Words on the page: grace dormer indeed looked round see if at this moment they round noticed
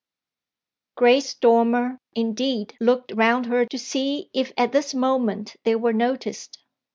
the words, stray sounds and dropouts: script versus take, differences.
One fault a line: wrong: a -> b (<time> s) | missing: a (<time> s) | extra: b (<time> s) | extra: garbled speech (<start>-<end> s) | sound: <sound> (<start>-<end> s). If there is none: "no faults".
extra: her to (3.5 s)
wrong: round -> were (5.7 s)